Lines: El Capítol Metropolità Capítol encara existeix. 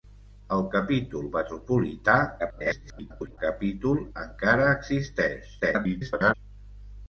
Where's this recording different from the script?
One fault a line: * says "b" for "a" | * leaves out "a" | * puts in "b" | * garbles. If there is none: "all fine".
* garbles
* garbles